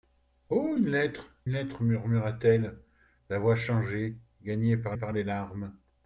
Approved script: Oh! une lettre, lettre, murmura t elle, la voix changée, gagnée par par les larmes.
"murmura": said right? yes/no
yes